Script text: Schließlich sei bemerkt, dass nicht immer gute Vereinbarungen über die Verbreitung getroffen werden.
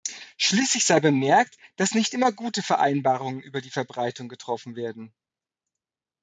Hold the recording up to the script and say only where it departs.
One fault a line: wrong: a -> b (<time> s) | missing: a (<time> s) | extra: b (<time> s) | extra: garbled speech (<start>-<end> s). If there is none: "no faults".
no faults